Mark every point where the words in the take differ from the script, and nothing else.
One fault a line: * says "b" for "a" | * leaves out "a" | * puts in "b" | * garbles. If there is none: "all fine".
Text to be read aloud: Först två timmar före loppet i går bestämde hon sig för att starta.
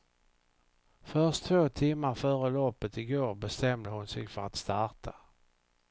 all fine